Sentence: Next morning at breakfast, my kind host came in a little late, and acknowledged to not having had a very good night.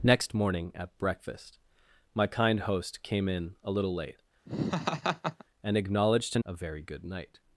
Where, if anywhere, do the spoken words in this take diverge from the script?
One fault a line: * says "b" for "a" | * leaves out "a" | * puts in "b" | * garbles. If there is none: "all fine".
* leaves out "not having had"